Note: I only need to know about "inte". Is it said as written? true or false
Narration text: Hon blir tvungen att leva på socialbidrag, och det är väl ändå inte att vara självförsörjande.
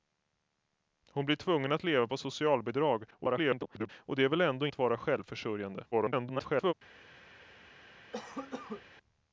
false